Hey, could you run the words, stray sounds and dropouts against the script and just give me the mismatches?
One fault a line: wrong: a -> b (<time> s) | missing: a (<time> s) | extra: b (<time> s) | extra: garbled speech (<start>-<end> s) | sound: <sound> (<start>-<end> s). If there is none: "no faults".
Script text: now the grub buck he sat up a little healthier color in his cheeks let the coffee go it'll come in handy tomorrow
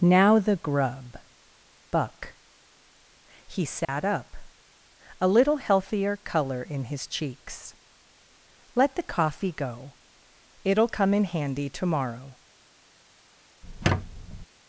sound: dropout (3.8-3.9 s)
sound: squeak (13.6-14.5 s)